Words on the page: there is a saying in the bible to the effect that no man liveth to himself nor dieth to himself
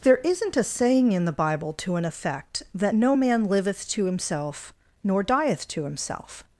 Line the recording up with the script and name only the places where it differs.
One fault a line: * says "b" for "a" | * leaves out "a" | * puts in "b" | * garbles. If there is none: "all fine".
* says "isn't" for "is"
* says "an" for "the"